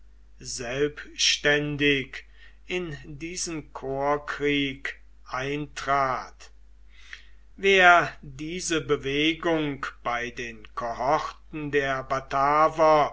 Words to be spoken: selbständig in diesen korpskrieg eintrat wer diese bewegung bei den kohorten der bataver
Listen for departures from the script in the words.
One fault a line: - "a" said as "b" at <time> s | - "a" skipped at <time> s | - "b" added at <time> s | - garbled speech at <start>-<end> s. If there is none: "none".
none